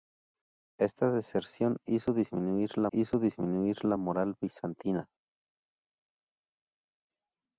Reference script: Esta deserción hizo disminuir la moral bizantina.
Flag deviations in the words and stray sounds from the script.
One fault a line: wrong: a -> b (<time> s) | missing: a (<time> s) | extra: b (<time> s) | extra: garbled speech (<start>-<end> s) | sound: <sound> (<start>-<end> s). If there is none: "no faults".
extra: hizo disminuir la (2.9 s)